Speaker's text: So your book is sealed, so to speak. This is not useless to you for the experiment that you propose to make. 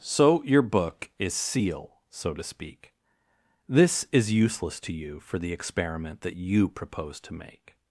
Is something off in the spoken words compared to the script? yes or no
yes